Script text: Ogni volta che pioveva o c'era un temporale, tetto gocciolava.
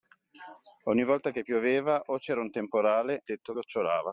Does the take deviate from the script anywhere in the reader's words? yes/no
no